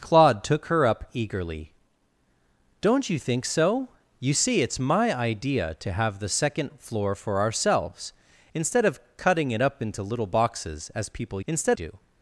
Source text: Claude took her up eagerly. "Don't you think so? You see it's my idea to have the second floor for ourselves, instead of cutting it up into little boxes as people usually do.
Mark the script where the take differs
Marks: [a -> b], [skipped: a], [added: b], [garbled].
Claude took her up eagerly. "Don't you think so? You see it's my idea to have the second floor for ourselves, instead of cutting it up into little boxes as people [usually -> instead] do.